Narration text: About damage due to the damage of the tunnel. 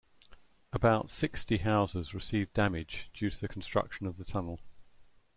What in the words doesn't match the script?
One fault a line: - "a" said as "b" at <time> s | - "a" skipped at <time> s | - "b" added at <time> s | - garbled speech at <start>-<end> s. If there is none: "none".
- "sixty houses received" added at 1.1 s
- "damage" said as "construction" at 3.5 s